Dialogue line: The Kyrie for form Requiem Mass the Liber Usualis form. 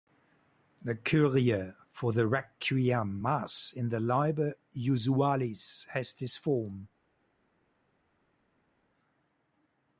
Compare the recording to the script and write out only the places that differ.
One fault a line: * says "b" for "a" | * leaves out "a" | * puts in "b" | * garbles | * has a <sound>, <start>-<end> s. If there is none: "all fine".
* says "the" for "form"
* puts in "in"
* puts in "has this"